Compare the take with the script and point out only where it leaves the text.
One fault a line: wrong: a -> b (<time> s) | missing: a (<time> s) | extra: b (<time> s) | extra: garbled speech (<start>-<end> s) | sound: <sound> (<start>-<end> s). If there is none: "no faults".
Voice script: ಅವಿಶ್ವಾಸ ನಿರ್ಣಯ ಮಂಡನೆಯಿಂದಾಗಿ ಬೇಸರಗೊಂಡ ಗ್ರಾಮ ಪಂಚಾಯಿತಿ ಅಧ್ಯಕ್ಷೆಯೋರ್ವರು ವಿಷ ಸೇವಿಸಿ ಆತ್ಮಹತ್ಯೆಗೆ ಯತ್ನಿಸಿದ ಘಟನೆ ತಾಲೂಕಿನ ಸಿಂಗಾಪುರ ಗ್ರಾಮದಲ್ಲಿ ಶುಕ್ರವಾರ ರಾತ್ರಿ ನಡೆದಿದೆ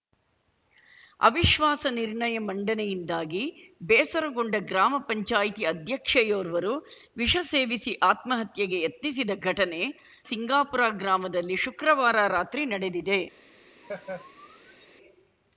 missing: ತಾಲೂಕಿನ (9.8 s)
sound: laugh (13.8-14.9 s)